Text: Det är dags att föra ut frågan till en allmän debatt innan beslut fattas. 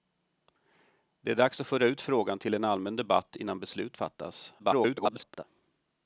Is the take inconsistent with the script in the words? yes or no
yes